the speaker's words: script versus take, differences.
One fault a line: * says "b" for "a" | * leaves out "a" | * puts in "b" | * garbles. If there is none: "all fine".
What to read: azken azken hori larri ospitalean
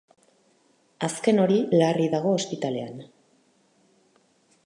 * leaves out "azken"
* puts in "dago"